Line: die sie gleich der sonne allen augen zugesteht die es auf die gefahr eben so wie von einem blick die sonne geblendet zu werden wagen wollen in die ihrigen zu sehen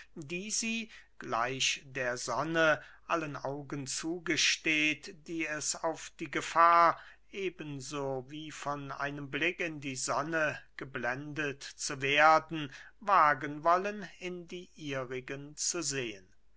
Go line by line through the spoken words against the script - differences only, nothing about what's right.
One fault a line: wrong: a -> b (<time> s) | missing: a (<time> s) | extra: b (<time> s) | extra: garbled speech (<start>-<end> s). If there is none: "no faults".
extra: in (9.6 s)